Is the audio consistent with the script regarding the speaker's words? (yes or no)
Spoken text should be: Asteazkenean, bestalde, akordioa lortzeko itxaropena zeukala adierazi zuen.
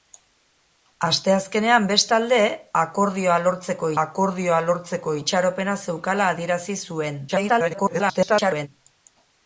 no